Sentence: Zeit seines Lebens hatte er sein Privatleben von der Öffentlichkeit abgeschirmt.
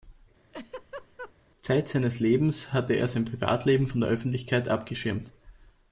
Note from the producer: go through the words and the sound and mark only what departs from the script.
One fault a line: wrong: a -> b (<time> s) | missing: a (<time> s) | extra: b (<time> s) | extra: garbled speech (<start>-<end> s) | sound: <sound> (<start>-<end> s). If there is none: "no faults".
sound: laugh (0.5-1.3 s)